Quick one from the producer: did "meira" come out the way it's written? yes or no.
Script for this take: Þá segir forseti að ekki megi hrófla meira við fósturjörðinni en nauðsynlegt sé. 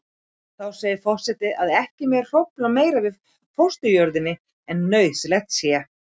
yes